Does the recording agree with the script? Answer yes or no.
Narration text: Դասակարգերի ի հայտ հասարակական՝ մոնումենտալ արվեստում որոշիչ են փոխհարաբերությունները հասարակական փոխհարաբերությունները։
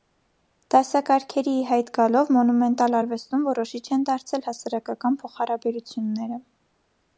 no